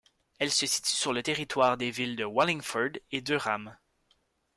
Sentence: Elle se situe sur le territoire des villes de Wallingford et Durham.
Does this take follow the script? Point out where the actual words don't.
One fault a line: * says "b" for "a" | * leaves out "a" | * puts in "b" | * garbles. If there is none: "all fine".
all fine